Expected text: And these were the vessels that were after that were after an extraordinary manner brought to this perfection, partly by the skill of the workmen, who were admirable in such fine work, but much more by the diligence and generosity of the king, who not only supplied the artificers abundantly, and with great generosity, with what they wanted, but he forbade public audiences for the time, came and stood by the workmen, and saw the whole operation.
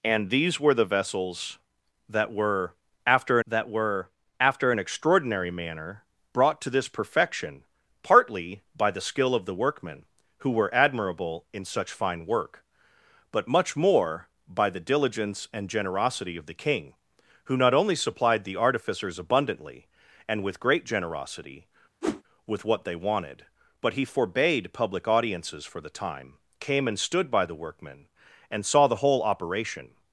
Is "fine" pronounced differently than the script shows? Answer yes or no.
no